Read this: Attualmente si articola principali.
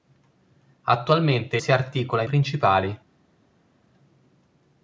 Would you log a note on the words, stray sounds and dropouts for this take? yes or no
no